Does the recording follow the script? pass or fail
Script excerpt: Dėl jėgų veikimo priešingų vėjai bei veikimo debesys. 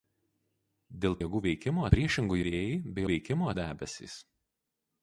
pass